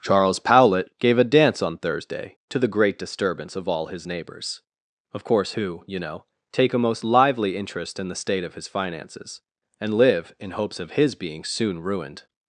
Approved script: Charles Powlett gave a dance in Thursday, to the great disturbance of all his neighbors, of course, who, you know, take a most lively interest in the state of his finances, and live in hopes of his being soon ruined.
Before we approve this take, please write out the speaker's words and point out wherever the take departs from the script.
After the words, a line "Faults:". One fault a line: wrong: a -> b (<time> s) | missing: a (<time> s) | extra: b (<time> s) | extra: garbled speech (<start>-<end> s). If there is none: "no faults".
Charles Powlett gave a dance on Thursday, to the great disturbance of all his neighbors, of course, who, you know, take a most lively interest in the state of his finances, and live in hopes of his being soon ruined.
Faults:
wrong: in -> on (1.6 s)